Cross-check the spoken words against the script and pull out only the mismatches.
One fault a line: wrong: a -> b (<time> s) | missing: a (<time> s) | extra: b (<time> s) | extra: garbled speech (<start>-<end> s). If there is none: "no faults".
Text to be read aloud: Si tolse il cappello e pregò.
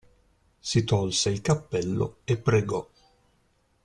no faults